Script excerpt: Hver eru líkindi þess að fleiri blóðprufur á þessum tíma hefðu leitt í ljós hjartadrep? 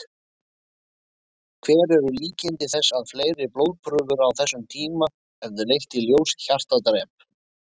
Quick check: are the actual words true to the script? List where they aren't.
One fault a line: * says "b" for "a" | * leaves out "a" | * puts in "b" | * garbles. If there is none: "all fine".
all fine